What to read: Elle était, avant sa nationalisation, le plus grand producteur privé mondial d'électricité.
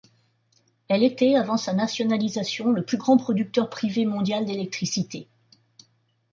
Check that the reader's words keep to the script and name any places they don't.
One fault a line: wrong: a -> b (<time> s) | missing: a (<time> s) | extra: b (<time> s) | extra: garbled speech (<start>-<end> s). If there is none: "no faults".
no faults